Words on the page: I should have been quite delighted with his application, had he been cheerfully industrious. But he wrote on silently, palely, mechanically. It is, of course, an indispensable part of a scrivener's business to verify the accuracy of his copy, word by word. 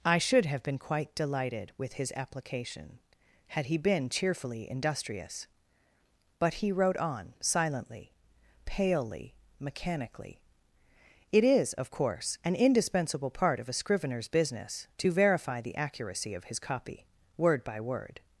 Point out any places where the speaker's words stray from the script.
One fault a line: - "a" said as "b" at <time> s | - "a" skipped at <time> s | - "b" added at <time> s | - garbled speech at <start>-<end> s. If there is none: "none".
none